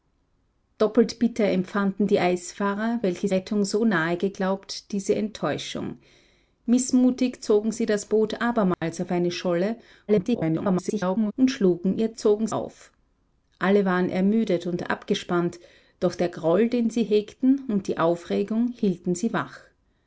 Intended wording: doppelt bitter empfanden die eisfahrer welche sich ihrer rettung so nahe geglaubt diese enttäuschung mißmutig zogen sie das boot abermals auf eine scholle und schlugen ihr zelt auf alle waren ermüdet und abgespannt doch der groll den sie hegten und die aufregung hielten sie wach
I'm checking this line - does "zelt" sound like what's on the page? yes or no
no